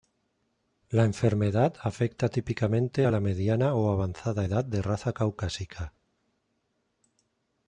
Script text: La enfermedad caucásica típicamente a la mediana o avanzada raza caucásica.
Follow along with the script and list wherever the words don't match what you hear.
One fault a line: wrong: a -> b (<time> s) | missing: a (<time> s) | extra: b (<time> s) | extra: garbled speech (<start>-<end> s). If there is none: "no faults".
wrong: caucásica -> afecta (1.8 s)
extra: edad de (4.4 s)